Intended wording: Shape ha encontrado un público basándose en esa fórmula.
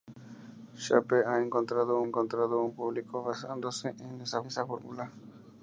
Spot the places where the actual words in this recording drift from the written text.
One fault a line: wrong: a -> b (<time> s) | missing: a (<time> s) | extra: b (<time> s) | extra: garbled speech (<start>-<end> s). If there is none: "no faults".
extra: encontrado (2.0 s)
extra: esa (4.5 s)